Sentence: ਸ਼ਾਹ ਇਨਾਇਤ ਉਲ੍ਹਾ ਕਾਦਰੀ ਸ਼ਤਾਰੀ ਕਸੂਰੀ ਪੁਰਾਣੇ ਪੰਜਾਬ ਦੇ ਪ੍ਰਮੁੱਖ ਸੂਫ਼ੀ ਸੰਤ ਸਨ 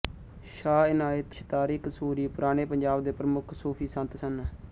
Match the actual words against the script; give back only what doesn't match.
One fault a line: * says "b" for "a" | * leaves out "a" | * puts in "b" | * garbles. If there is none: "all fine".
* leaves out "ਉਲ੍ਹਾ ਕਾਦਰੀ"